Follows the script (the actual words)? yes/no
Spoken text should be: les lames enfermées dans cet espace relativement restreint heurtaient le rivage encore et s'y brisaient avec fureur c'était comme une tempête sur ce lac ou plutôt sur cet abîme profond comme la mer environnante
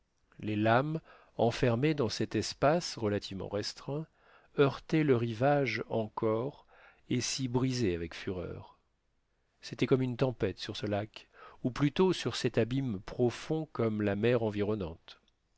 yes